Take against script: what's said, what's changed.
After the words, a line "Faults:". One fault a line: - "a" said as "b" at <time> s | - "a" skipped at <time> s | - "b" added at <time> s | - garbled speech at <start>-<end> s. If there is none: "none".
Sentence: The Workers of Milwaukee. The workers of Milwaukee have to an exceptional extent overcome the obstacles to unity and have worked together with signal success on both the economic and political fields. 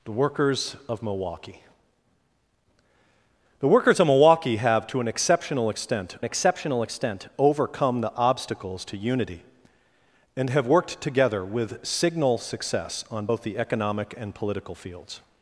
The Workers of Milwaukee. The workers of Milwaukee have to an exceptional extent exceptional extent overcome the obstacles to unity and have worked together with signal success on both the economic and political fields.
Faults:
- "exceptional extent" added at 6.2 s